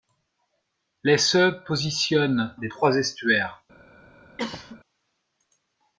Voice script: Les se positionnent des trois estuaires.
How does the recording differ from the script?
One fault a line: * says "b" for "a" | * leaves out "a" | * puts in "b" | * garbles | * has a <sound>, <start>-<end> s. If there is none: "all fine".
* has a cough, 4.4-4.8 s